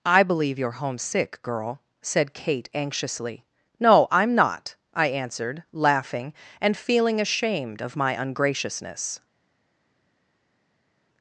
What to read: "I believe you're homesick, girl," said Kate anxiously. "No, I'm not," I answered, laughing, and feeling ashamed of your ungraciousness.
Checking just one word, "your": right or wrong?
wrong